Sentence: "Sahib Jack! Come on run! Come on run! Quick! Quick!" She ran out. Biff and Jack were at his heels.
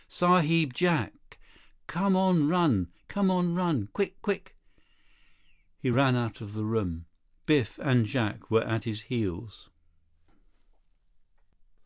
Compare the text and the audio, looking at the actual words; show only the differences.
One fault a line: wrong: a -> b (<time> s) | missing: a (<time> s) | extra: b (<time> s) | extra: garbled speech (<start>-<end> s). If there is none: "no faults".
wrong: She -> He (5.8 s)
extra: of the room (6.4 s)